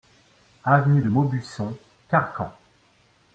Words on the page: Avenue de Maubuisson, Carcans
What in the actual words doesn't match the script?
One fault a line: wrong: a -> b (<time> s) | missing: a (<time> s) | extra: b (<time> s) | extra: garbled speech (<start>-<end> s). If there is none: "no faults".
no faults